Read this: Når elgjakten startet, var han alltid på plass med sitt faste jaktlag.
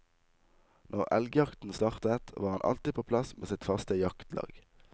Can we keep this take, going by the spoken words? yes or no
yes